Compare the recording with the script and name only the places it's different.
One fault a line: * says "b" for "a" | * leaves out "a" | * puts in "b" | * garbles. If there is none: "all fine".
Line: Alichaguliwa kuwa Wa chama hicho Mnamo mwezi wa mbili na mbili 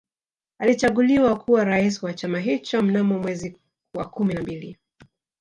* puts in "Rais"
* says "kumi" for "mbili"